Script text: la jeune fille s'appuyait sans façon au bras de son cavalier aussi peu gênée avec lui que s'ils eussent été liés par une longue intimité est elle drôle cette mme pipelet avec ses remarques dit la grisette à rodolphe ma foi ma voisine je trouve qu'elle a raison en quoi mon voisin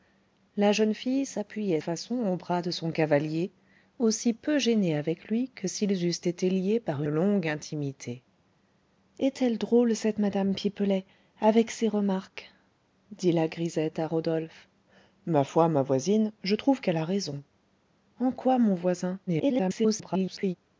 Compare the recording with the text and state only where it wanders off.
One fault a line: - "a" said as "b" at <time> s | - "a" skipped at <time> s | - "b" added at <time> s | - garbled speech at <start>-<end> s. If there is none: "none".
- "sans" skipped at 1.8 s
- "une" skipped at 7.0 s
- garbled speech at 19.3-20.6 s